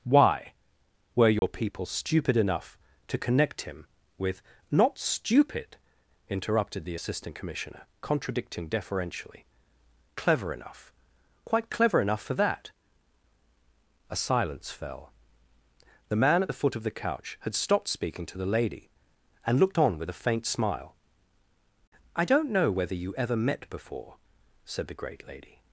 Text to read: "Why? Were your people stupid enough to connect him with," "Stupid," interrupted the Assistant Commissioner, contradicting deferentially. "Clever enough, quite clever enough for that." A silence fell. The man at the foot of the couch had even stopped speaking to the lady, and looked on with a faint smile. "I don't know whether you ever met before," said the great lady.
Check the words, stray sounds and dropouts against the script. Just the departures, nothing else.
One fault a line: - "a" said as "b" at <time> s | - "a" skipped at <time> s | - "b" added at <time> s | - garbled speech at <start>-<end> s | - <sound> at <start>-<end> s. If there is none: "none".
- dropout at 1.4-1.4 s
- "Not" added at 4.7 s
- "even" skipped at 17.6 s